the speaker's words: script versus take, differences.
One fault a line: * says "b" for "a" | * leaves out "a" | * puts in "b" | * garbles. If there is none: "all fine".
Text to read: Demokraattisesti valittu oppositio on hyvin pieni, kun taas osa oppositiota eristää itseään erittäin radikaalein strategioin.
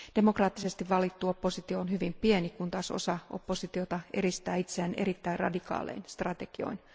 all fine